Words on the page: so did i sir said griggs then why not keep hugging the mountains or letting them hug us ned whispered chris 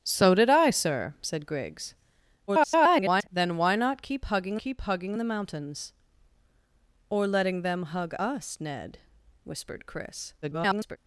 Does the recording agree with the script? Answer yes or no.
no